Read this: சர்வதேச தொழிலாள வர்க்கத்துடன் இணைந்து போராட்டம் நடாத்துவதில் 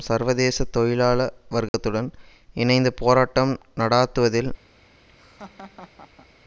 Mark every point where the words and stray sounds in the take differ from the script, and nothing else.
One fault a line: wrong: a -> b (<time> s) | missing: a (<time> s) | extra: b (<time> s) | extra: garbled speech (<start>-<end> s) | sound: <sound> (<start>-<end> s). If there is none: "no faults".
sound: dropout (1.7-1.7 s)
sound: laugh (5.1-6.3 s)